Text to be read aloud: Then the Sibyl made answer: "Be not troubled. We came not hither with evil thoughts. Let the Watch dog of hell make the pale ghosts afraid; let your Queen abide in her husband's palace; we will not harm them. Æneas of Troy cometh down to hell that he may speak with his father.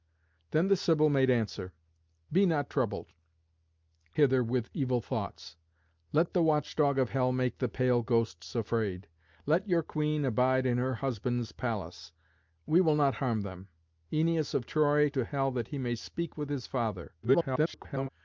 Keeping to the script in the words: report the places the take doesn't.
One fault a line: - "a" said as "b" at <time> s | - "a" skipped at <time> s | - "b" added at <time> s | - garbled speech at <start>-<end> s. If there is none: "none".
- "We came not" skipped at 3.1 s
- "cometh down" skipped at 15.1 s
- garbled speech at 17.2-18.1 s